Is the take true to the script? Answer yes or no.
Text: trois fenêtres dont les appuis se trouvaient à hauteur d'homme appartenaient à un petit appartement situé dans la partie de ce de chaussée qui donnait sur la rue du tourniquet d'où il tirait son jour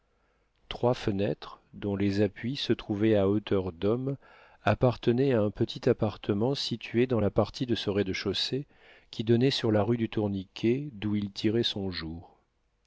no